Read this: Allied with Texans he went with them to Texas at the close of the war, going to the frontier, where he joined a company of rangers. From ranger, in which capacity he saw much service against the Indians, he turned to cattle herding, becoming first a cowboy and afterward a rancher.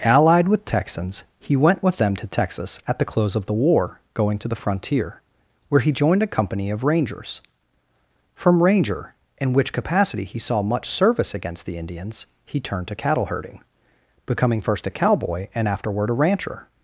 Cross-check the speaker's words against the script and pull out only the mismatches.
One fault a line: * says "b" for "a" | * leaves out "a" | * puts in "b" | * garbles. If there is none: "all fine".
all fine